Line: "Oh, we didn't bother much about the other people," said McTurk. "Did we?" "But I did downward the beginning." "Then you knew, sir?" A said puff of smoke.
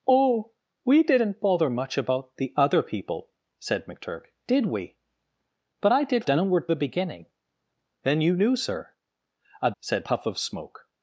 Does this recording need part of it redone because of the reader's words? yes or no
no